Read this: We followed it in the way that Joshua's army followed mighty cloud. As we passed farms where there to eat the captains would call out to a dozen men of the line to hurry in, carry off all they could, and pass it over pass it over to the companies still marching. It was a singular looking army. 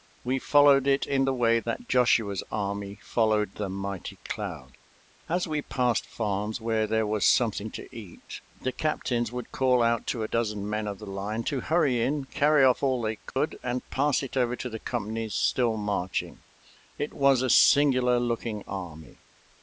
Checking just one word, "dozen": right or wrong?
right